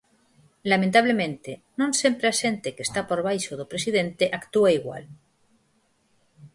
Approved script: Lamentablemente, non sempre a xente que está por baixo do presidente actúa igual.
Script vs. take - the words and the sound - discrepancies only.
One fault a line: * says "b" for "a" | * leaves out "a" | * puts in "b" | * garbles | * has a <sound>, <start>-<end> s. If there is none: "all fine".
all fine